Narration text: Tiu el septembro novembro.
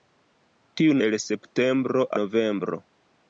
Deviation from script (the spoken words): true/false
false